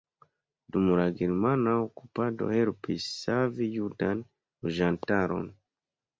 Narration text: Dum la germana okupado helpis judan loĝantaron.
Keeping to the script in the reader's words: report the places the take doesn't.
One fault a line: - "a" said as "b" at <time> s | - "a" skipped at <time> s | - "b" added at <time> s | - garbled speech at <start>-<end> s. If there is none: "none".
- "savi" added at 3.2 s